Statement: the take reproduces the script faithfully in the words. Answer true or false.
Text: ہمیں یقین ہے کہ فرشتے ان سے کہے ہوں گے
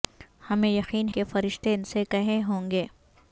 false